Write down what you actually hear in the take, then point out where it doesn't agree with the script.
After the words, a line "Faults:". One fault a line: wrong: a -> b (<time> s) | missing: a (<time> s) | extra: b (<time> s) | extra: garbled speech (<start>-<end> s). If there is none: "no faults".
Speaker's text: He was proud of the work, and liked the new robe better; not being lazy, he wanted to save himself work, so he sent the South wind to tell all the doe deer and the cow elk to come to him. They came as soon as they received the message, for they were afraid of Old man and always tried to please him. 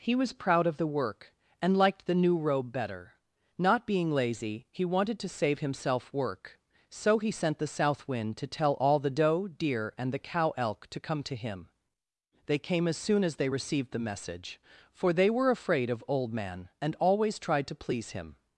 He was proud of the work, and liked the new robe better; not being lazy, he wanted to save himself work, so he sent the South wind to tell all the doe deer and the cow elk to come to him. They came as soon as they received the message, for they were afraid of Old man and always tried to please him.
Faults:
no faults